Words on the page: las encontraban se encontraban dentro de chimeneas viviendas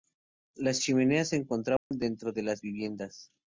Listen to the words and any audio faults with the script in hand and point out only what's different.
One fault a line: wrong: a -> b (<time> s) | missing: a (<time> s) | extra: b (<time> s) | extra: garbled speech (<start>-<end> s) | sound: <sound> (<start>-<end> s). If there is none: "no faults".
wrong: encontraban -> chimeneas (0.8 s)
sound: dropout (1.8-1.9 s)
wrong: chimeneas -> las (2.4 s)